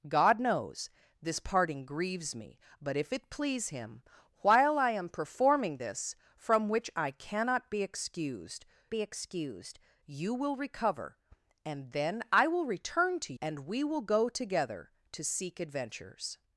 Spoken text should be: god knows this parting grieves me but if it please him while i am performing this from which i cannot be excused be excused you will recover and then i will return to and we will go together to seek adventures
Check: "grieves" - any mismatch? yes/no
no